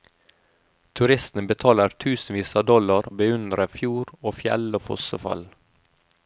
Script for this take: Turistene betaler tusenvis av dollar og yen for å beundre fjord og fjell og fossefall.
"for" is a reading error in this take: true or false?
true